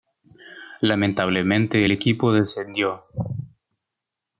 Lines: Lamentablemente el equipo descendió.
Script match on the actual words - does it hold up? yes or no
yes